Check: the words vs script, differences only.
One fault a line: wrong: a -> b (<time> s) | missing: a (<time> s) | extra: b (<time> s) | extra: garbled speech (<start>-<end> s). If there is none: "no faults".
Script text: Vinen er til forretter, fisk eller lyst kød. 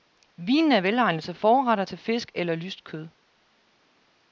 extra: velegnet (0.8 s)
extra: til (1.8 s)